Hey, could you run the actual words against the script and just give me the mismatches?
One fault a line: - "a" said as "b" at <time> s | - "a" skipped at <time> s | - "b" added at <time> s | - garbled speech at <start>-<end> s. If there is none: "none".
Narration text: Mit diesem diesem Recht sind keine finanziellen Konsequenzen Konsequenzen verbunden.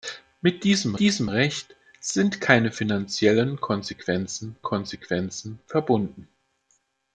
none